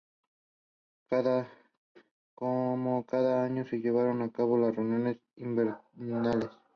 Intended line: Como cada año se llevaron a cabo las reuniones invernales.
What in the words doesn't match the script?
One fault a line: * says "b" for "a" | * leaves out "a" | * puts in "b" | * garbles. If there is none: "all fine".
all fine